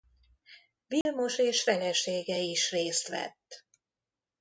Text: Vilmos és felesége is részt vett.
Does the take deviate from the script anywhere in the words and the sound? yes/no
yes